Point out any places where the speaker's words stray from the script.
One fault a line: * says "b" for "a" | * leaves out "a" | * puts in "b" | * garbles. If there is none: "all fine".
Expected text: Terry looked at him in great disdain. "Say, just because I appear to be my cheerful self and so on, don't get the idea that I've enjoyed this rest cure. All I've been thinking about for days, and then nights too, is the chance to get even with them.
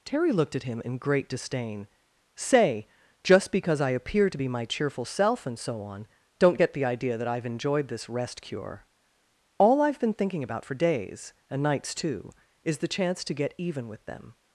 * leaves out "then"